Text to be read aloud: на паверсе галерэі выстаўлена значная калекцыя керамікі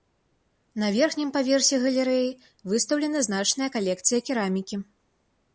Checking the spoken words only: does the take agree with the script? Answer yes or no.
no